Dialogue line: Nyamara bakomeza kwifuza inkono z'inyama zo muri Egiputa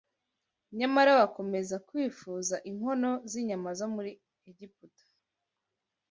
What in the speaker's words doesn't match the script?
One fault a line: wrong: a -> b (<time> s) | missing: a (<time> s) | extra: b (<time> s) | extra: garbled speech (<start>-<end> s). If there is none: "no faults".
no faults